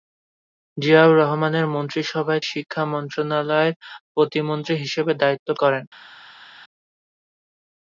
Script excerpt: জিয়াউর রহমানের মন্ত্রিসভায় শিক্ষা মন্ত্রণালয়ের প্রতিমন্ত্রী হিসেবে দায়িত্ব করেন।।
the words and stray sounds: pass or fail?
pass